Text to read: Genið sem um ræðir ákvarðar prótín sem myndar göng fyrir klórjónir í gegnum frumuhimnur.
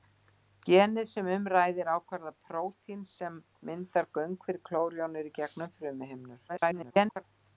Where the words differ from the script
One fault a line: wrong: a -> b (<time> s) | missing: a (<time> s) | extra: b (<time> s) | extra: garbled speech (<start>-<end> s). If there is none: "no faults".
extra: garbled speech (6.5-7.2 s)